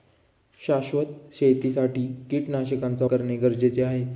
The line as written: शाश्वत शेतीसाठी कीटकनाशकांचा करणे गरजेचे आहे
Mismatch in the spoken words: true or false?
false